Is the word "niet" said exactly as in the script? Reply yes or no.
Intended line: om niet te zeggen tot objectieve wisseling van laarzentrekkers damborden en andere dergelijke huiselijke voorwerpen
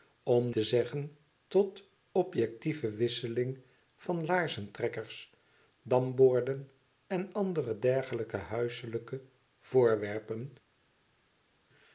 no